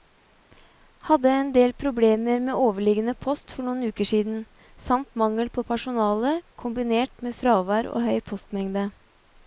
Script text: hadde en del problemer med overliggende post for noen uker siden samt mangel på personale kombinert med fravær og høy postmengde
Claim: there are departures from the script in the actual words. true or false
false